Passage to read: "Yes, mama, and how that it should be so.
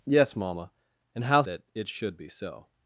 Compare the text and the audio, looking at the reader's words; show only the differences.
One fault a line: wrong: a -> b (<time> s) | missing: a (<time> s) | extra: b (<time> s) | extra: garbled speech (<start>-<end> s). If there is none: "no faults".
no faults